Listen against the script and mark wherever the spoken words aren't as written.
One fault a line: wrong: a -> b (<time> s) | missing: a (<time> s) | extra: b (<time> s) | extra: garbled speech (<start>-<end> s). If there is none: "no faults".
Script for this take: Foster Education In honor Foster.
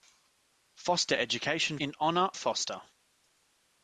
no faults